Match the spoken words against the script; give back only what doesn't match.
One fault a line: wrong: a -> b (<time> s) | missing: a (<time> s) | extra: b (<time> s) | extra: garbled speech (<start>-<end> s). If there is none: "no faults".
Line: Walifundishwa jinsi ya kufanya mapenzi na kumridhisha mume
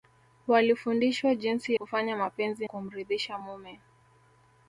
missing: ya (1.8 s)
missing: na (2.7 s)